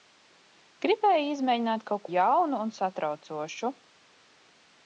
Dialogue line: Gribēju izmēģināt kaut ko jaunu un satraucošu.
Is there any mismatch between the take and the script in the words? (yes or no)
yes